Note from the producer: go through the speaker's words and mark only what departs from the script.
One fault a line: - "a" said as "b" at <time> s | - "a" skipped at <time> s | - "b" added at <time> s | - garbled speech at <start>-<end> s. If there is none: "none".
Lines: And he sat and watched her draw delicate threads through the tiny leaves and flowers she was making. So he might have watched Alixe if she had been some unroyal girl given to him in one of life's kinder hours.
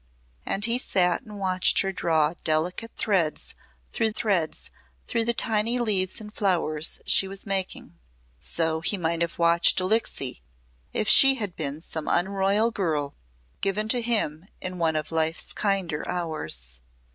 - "threads through" added at 4.1 s